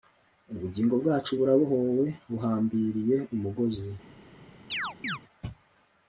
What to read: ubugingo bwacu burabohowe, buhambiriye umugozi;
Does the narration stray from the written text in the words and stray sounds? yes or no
yes